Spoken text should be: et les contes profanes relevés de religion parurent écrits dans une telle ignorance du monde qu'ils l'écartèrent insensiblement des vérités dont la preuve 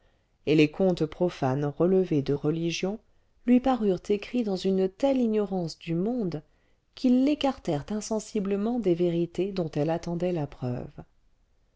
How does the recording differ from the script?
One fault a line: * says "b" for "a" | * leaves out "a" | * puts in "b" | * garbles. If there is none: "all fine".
* puts in "lui"
* puts in "elle attendait"